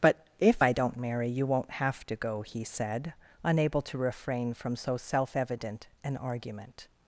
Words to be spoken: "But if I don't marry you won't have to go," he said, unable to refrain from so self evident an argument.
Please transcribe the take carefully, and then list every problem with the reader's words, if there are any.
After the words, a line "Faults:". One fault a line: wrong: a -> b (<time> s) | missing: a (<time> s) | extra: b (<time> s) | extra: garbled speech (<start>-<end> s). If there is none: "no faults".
"But if I don't marry you won't have to go," he said, unable to refrain from so self evident an argument.
Faults:
no faults